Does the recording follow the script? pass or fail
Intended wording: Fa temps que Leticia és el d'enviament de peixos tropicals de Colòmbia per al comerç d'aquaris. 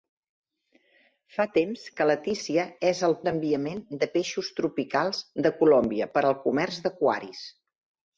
pass